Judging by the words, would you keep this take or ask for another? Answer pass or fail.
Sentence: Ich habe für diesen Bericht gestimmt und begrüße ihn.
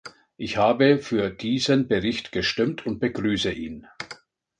pass